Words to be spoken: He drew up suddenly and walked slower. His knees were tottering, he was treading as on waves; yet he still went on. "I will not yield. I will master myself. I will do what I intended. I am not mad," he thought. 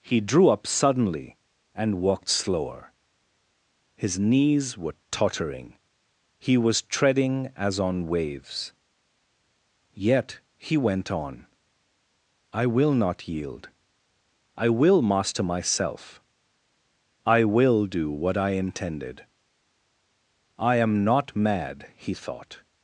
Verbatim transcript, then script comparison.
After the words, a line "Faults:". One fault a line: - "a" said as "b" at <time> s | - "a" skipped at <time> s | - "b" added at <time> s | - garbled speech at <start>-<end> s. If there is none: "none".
He drew up suddenly and walked slower. His knees were tottering, he was treading as on waves; yet he went on. "I will not yield. I will master myself. I will do what I intended. I am not mad," he thought.
Faults:
- "still" skipped at 10.8 s